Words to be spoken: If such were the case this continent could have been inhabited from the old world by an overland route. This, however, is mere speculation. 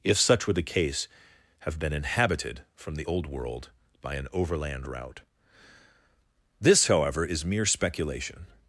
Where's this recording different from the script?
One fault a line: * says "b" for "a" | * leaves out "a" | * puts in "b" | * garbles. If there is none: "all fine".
* leaves out "this continent could"